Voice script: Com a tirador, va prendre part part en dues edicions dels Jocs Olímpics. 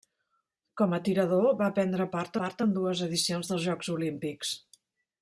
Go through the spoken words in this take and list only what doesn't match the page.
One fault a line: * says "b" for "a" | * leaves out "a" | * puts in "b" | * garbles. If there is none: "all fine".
all fine